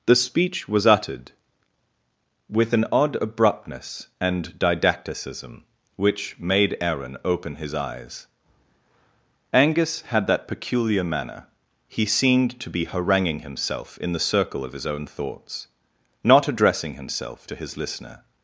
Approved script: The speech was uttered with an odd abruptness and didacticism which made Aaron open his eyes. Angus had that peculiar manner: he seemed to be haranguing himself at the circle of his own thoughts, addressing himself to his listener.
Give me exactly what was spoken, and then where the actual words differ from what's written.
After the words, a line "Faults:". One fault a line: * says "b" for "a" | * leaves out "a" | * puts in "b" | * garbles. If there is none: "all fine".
The speech was uttered with an odd abruptness and didacticism which made Aaron open his eyes. Angus had that peculiar manner: he seemed to be haranguing himself in the circle of his own thoughts, not addressing himself to his listener.
Faults:
* says "in" for "at"
* puts in "not"